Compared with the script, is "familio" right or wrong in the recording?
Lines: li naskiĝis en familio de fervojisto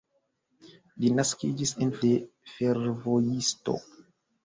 wrong